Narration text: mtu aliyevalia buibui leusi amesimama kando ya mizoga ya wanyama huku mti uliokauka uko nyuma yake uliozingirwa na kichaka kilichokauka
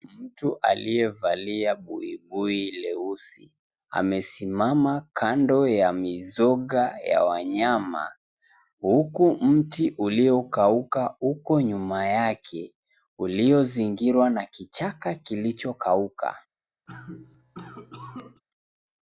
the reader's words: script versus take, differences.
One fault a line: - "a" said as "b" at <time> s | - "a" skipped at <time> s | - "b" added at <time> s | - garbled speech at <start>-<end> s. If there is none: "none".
none